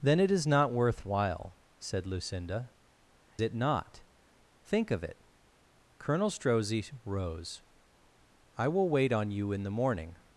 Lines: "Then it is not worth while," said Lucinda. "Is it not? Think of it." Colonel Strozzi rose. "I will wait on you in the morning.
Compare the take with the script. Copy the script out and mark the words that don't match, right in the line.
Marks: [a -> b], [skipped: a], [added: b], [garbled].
"Then it is not worth while," said Lucinda. [skipped: "Is] it not? Think of it." Colonel Strozzi rose. "I will wait on you in the morning.